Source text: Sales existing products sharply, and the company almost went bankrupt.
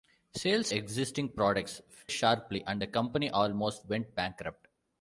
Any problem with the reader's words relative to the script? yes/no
no